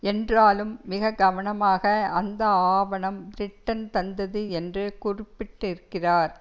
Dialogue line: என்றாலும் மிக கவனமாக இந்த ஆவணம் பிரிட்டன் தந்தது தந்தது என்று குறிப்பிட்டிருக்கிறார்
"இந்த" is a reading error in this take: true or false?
true